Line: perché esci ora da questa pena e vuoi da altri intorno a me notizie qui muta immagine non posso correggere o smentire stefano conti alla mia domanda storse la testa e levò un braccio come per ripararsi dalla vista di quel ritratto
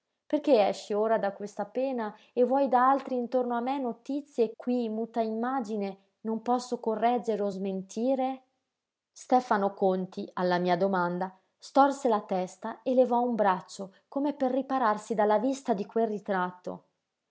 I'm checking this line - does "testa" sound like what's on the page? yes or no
yes